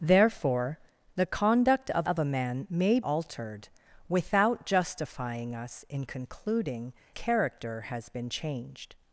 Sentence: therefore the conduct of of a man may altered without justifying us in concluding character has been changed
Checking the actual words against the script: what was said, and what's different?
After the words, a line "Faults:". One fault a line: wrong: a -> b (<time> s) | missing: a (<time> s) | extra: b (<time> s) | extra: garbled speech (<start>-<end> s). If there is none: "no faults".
therefore the conduct of of a man may altered without justifying us in concluding character has been changed
Faults:
no faults